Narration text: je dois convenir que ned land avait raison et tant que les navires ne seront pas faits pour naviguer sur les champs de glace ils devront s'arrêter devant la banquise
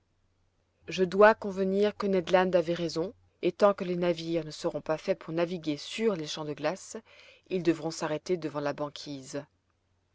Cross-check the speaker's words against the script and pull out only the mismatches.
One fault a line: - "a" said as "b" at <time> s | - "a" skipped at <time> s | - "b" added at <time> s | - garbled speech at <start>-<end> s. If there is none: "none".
none